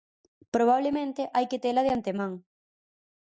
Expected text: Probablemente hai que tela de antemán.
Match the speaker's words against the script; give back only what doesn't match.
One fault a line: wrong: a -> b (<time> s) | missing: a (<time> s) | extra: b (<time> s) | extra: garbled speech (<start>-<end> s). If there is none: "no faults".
no faults